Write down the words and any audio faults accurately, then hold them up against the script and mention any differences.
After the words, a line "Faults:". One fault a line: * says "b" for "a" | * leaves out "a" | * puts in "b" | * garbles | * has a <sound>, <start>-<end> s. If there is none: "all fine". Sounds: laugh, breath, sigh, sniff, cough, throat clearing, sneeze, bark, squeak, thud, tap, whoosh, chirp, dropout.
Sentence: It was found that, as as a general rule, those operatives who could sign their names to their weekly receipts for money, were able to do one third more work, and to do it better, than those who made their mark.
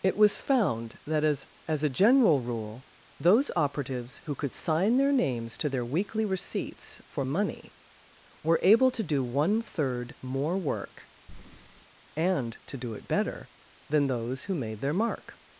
It was found that, as as a general rule, those operatives who could sign their names to their weekly receipts for money, were able to do one third more work, and to do it better, than those who made their mark.
Faults:
* has a breath, 11.3-11.9 s